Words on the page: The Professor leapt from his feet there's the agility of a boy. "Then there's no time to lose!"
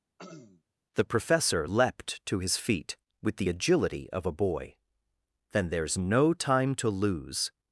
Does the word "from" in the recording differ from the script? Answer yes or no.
yes